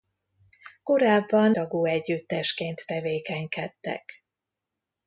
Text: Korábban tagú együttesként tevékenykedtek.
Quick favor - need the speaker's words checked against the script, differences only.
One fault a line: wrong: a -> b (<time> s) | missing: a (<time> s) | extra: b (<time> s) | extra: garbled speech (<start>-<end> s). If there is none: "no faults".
no faults